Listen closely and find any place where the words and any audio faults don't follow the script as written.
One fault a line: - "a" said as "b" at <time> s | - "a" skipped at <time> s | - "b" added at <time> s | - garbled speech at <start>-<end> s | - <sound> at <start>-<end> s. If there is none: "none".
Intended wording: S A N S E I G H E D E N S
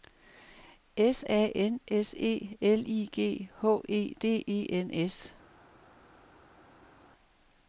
- "L" added at 2.6 s